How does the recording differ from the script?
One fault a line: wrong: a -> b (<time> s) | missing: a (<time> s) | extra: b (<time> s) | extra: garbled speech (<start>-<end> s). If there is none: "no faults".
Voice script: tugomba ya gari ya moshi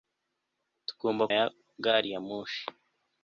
no faults